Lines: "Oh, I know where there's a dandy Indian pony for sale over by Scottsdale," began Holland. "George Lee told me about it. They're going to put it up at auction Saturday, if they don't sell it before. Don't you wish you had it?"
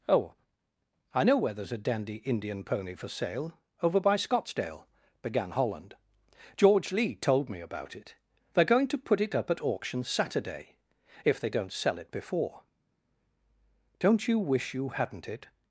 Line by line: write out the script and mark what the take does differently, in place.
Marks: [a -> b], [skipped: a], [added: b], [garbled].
"Oh, I know where there's a dandy Indian pony for sale over by Scottsdale," began Holland. "George Lee told me about it. They're going to put it up at auction Saturday, if they don't sell it before. Don't you wish you [had -> hadn't] it?"